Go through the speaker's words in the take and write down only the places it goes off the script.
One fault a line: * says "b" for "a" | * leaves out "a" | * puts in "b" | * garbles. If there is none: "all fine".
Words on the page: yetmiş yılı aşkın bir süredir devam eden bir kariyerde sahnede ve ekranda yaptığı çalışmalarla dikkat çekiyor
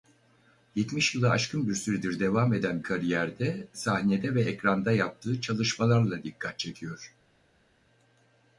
* leaves out "bir"